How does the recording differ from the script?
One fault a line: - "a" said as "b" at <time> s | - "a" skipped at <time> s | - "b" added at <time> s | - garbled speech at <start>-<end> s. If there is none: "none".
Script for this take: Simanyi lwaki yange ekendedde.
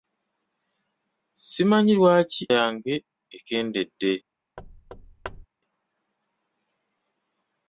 none